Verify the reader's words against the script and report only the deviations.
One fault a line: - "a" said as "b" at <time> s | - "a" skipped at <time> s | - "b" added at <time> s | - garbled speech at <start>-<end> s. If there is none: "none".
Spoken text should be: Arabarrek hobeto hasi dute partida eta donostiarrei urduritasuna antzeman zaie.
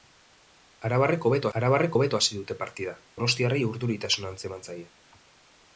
- "arabarrek hobeto" added at 1.6 s
- "eta" skipped at 2.9 s